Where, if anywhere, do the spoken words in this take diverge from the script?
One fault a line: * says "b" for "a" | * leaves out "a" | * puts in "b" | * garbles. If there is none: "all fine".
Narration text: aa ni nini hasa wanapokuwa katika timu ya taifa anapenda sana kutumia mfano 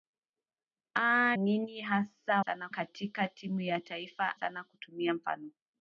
* leaves out "ni"
* says "sana" for "wanapokuwa"
* leaves out "anapenda"